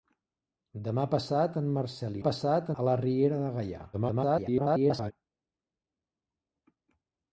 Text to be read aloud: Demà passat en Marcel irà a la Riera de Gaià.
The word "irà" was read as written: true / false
false